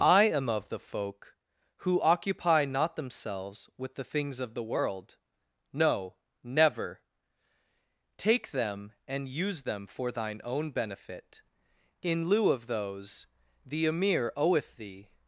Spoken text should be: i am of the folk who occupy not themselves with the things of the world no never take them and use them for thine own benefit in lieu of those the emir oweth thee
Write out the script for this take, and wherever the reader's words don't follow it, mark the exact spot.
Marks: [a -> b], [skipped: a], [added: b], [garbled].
i am of the folk who occupy not themselves with the things of the world no never take them and use them for thine own benefit in lieu of those the emir oweth thee